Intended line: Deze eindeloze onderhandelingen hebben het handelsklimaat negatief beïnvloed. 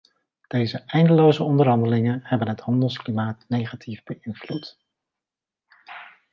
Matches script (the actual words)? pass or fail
pass